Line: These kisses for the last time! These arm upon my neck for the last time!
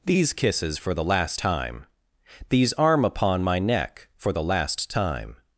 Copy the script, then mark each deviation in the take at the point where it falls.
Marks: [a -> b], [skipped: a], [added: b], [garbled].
These kisses for the last time! These arm upon my neck for the last time!